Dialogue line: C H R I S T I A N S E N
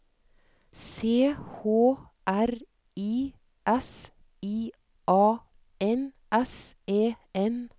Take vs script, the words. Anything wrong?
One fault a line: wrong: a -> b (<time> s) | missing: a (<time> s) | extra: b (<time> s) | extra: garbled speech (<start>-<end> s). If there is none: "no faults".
missing: T (4.1 s)